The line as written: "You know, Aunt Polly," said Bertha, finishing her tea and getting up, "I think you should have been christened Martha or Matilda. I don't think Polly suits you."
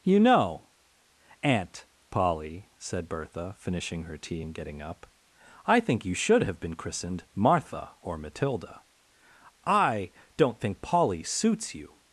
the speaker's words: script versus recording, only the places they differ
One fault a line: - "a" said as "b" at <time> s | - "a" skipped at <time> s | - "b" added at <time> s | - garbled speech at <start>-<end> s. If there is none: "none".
none